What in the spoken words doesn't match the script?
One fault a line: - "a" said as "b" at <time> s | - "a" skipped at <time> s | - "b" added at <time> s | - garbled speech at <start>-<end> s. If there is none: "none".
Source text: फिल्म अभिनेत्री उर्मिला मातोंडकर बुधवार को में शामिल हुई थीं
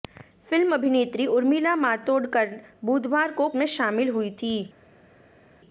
none